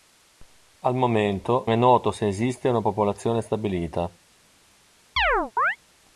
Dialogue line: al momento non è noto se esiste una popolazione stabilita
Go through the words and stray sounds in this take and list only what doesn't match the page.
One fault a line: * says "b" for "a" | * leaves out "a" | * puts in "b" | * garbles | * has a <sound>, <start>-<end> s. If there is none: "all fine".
* leaves out "non"
* has a chirp, 5.2-5.8 s